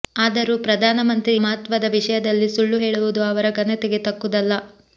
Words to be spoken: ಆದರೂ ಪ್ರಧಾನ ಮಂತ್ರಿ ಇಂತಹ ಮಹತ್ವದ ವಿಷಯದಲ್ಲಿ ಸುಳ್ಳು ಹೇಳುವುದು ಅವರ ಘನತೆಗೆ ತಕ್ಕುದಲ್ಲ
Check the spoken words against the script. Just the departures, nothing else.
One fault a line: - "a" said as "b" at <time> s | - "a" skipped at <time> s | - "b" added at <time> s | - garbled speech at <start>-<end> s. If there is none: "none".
- "ಇಂತಹ" skipped at 1.3 s